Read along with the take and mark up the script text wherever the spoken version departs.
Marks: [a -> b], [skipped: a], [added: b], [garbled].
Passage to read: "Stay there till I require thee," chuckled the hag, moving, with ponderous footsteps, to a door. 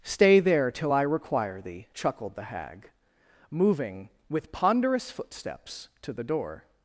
"Stay there till I require thee," chuckled the hag, moving, with ponderous footsteps, to [a -> the] door.